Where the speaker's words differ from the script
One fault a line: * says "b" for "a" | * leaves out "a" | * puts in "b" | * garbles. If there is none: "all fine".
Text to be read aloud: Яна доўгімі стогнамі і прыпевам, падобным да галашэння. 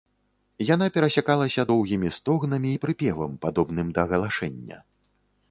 * puts in "перасякалася"